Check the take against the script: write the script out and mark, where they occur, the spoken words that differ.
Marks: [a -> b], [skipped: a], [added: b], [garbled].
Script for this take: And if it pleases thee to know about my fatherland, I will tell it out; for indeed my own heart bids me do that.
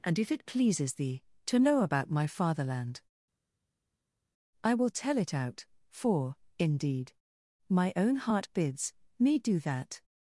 And if it pleases thee to know about my fatherland, I will tell it out; for indeed my own heart bids me do that.